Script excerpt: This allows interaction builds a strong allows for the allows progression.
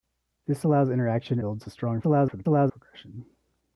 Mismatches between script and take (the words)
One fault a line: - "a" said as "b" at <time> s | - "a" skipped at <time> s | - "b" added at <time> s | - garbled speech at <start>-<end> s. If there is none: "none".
none